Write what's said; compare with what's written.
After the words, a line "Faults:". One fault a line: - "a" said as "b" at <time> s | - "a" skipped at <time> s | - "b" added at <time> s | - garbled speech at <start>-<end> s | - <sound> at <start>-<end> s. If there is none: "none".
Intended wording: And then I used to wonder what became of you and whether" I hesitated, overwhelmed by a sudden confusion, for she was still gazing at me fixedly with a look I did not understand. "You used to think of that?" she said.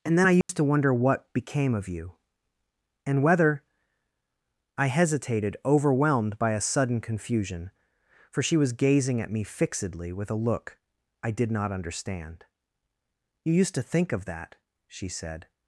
And then I used to wonder what became of you and whether" I hesitated, overwhelmed by a sudden confusion, for she was gazing at me fixedly with a look I did not understand. "You used to think of that?" she said.
Faults:
- dropout at 0.4-0.5 s
- "still" skipped at 8.7 s